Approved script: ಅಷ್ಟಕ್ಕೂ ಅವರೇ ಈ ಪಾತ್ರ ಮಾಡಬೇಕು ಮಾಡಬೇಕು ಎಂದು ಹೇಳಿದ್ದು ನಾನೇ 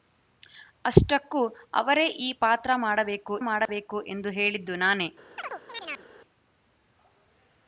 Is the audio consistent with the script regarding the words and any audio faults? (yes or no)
no